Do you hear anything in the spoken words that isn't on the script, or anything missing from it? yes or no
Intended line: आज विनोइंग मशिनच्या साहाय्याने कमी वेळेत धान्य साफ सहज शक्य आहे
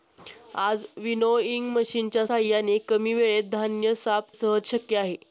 no